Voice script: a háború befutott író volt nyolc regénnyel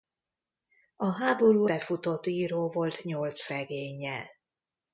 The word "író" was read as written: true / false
true